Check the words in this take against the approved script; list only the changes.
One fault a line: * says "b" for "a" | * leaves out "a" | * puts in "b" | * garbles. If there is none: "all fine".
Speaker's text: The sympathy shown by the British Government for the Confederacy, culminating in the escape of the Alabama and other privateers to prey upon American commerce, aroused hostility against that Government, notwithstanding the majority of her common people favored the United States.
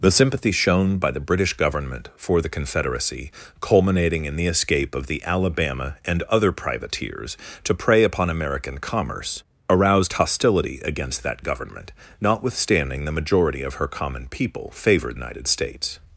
* leaves out "the"